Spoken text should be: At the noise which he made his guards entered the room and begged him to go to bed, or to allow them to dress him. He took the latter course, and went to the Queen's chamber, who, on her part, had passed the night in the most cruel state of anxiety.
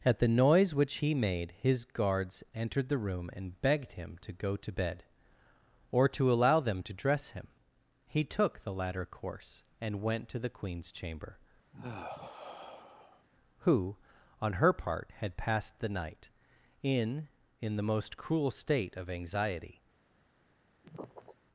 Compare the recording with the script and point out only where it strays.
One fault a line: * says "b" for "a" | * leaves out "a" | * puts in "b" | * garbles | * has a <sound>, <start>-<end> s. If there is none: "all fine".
* has a sigh, 11.7-13.3 s
* puts in "in"
* has a sniff, 20.8-21.4 s